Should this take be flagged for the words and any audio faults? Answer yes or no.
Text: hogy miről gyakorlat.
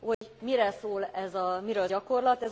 yes